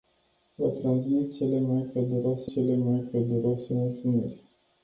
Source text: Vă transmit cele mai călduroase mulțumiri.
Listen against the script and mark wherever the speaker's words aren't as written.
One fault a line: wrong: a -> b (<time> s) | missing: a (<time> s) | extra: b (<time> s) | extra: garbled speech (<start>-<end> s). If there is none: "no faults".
extra: cele mai călduroase (2.5 s)